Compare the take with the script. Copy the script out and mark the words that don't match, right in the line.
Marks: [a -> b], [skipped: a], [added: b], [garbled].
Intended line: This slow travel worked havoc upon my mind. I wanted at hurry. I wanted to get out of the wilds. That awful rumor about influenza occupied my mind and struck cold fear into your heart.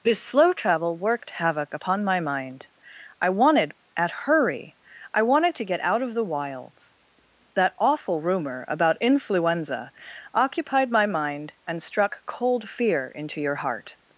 This slow travel worked havoc upon my mind. I wanted at hurry. I wanted to get out of the wilds. That awful rumor about influenza occupied my mind and struck cold fear into your heart.